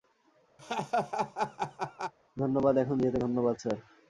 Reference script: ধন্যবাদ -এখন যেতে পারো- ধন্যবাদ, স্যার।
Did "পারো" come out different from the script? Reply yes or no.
yes